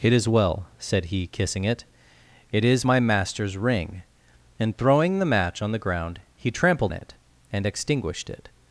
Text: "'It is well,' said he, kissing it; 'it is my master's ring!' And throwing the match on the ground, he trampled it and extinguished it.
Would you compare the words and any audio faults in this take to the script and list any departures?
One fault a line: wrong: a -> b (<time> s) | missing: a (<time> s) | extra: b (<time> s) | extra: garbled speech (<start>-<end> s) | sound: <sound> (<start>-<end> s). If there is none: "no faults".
no faults